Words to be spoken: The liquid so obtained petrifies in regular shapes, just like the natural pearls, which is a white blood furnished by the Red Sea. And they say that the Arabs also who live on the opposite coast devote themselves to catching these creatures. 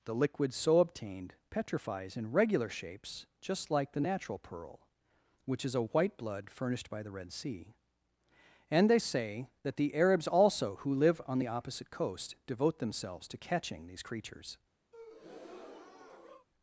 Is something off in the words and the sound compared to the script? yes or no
yes